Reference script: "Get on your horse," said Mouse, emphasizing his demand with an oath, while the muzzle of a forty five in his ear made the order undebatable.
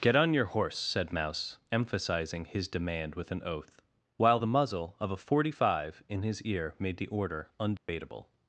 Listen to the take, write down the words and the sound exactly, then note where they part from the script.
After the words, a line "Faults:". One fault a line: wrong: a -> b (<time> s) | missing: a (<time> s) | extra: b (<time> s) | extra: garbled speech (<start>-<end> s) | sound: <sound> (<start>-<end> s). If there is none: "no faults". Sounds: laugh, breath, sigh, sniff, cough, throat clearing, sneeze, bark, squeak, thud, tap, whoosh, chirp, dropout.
"Get on your horse," said Mouse, emphasizing his demand with an oath, while the muzzle of a forty five in his ear made the order undebatable.
Faults:
sound: dropout (7.8-7.9 s)